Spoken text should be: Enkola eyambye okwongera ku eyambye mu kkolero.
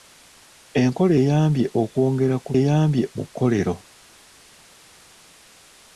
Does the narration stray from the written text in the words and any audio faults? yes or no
no